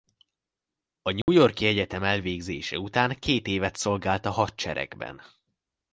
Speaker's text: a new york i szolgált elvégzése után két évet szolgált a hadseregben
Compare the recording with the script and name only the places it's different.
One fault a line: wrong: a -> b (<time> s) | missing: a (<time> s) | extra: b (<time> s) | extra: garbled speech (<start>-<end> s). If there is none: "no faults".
wrong: szolgált -> egyetem (1.6 s)